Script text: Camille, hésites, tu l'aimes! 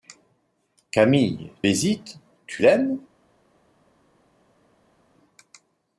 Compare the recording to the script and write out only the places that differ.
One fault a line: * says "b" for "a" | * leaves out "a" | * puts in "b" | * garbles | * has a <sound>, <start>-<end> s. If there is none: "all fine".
all fine